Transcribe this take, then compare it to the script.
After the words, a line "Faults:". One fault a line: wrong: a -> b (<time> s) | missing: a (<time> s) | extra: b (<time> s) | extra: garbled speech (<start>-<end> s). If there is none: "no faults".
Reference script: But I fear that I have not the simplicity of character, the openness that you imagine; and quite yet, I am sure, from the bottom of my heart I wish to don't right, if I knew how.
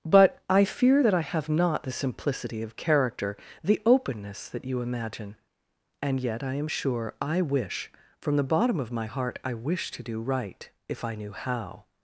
But I fear that I have not the simplicity of character, the openness that you imagine; and yet, I am sure, I wish, from the bottom of my heart I wish to do right, if I knew how.
Faults:
missing: quite (6.2 s)
extra: I wish (7.2 s)
wrong: don't -> do (10.0 s)